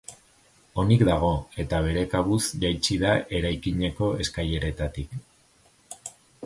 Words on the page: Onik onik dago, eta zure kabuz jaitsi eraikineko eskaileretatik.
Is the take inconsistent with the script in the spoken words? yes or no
yes